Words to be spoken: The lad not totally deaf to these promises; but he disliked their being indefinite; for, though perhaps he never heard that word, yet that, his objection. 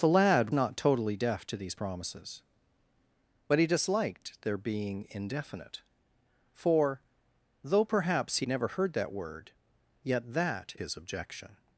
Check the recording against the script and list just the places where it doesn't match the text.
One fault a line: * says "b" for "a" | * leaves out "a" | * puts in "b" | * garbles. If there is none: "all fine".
all fine